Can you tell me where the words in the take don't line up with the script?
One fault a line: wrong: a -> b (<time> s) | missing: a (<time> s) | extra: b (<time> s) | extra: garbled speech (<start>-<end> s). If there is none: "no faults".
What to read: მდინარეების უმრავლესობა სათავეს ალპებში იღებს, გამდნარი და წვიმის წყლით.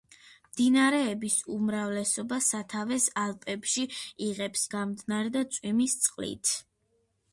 no faults